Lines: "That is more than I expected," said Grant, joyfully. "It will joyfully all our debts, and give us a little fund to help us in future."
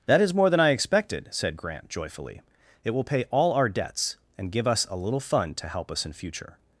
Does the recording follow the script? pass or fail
fail